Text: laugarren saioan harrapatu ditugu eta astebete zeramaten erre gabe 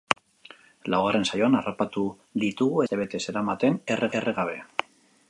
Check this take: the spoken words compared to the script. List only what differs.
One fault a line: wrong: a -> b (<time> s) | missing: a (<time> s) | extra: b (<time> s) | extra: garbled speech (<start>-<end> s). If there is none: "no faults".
missing: eta (2.8 s)
extra: erre (4.2 s)